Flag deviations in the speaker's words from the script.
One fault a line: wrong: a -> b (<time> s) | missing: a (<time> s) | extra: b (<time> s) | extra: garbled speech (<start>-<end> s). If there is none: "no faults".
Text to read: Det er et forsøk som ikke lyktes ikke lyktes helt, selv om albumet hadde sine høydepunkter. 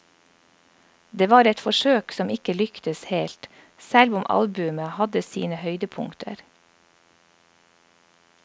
wrong: er -> var (1.3 s)
missing: ikke lyktes (3.0 s)